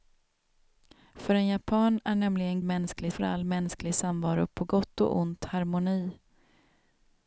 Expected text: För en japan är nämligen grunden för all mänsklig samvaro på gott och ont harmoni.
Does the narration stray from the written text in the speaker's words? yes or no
yes